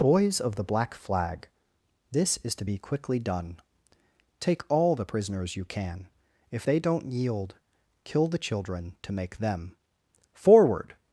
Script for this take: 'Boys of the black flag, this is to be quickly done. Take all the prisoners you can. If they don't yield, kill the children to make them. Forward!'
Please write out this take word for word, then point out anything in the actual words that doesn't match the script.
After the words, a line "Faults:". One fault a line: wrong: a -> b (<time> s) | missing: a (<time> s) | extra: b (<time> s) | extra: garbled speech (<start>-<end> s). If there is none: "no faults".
'Boys of the black flag, this is to be quickly done. Take all the prisoners you can. If they don't yield, kill the children to make them. Forward!'
Faults:
no faults